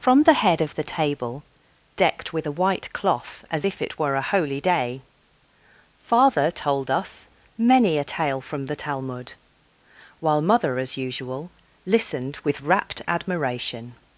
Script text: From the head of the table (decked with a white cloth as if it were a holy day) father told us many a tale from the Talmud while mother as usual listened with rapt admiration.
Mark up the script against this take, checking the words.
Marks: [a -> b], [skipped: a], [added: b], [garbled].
From the head of the table (decked with a white cloth as if it were a holy day) father told us many a tale from the Talmud while mother as usual listened with rapt admiration.